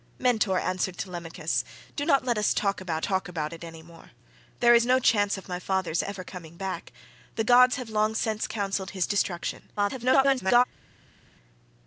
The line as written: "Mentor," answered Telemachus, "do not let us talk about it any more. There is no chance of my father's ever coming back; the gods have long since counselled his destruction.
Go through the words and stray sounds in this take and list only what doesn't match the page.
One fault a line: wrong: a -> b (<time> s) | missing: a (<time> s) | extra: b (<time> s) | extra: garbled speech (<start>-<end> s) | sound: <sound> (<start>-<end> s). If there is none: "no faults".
extra: talk about (3.0 s)
extra: garbled speech (9.8-10.6 s)